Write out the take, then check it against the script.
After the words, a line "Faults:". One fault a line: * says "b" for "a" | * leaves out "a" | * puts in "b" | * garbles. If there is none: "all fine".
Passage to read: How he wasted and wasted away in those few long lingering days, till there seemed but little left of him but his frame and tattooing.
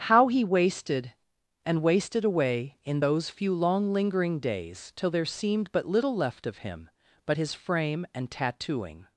How he wasted and wasted away in those few long lingering days, till there seemed but little left of him but his frame and tattooing.
Faults:
all fine